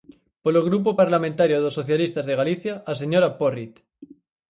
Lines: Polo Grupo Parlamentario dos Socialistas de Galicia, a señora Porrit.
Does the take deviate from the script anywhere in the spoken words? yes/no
no